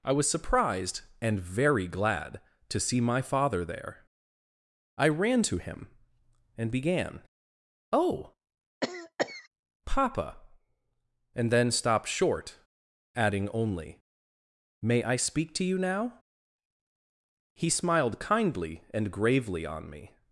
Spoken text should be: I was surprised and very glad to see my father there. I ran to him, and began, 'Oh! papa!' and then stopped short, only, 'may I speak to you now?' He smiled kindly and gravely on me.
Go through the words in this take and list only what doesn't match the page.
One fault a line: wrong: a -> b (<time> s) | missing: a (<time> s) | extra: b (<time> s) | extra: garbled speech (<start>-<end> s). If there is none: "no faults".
extra: adding (13.2 s)